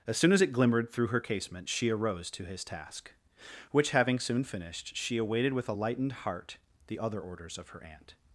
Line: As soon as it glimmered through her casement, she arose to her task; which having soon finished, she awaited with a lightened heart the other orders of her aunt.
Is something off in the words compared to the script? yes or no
yes